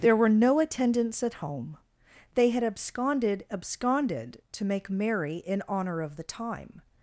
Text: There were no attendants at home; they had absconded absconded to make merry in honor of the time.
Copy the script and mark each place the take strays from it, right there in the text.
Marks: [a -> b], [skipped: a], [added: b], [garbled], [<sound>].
There were no attendants at home; they had absconded absconded to make merry in honor of the time.